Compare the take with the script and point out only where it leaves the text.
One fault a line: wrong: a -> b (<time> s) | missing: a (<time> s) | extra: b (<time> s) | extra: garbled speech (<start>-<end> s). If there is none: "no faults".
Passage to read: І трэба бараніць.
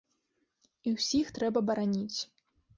extra: ўсіх (0.9 s)